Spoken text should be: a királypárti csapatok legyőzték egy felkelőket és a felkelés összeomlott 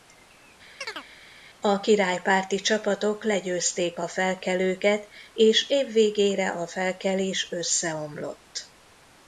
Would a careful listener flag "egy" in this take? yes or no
yes